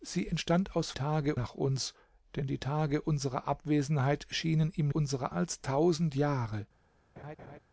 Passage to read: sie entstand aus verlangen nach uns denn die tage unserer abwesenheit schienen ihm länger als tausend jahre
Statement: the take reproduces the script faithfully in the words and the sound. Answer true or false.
false